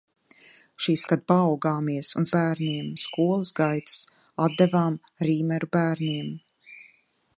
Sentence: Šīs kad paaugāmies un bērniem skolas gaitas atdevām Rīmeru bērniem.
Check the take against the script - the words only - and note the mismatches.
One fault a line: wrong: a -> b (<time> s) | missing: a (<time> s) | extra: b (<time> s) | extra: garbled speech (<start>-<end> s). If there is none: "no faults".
no faults